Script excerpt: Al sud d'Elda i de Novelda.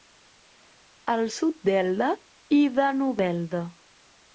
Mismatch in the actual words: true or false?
false